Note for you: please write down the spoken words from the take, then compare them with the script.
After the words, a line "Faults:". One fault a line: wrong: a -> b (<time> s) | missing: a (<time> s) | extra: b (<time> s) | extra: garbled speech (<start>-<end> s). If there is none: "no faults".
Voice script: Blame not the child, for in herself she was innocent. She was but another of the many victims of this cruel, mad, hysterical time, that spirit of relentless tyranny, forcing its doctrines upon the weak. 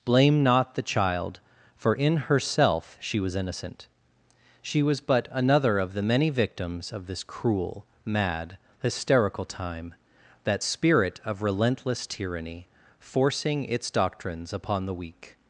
Blame not the child, for in herself she was innocent. She was but another of the many victims of this cruel, mad, hysterical time, that spirit of relentless tyranny, forcing its doctrines upon the weak.
Faults:
no faults